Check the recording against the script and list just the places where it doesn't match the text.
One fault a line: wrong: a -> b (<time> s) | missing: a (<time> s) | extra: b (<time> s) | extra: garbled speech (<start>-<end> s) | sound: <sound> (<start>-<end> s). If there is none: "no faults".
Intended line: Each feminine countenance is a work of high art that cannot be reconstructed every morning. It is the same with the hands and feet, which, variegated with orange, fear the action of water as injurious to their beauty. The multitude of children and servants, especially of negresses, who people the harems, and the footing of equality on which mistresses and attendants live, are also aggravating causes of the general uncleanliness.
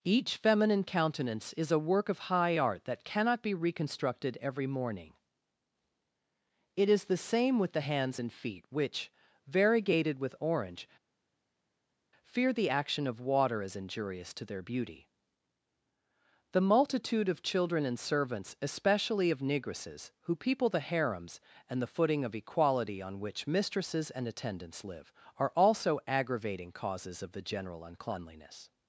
no faults